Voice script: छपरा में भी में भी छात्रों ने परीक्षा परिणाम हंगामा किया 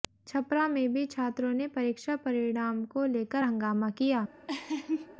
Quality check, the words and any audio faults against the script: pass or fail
fail